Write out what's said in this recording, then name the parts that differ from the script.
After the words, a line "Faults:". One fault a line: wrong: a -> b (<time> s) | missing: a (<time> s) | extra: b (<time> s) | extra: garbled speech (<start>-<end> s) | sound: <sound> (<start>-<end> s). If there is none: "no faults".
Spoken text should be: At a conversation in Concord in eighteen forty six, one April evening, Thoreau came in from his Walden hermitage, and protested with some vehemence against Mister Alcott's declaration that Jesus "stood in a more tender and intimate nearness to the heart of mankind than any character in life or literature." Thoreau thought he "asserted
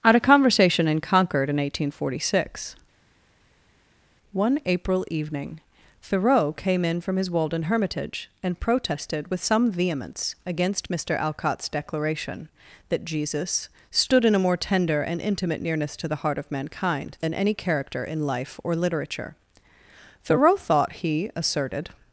At a conversation in Concord in eighteen forty six, one April evening, Thoreau came in from his Walden hermitage, and protested with some vehemence against Mister Alcott's declaration that Jesus "stood in a more tender and intimate nearness to the heart of mankind than any character in life or literature." Thoreau thought he "asserted
Faults:
no faults